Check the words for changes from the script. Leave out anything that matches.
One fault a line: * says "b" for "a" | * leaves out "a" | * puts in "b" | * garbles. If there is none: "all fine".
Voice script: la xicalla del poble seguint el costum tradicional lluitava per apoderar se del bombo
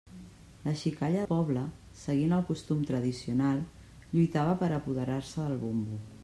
* leaves out "del"